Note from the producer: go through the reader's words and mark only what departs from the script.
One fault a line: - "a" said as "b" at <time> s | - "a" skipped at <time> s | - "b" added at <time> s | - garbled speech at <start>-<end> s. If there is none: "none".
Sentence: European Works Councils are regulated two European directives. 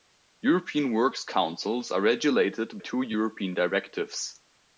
none